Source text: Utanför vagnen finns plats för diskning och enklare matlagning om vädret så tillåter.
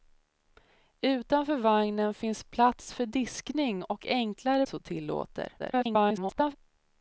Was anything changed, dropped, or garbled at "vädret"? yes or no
yes